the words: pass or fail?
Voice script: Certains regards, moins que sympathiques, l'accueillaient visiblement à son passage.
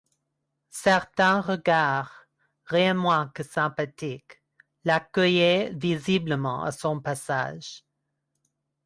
fail